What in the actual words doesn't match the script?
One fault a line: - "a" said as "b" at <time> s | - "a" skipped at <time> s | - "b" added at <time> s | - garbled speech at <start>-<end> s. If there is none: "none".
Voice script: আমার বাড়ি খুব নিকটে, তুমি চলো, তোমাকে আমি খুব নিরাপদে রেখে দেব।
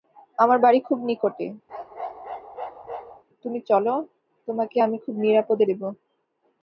- "রেখে" skipped at 5.6 s